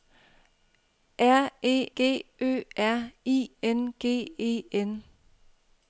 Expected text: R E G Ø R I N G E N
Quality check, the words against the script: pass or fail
pass